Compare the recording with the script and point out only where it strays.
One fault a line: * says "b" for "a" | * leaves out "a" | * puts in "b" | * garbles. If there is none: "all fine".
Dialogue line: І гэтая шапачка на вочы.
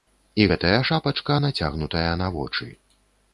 * puts in "нацягнутая"